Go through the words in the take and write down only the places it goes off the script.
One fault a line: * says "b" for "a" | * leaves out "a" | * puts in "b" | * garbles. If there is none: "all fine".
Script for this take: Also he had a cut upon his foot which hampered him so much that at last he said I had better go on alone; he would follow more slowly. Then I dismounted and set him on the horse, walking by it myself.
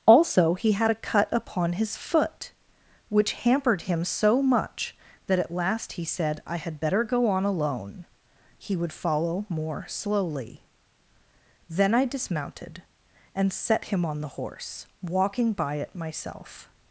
all fine